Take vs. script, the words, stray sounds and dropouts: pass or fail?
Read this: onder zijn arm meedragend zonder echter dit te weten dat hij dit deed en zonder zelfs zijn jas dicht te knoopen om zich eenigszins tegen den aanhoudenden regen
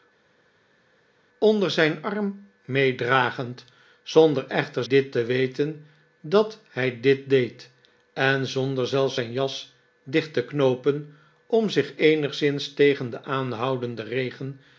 pass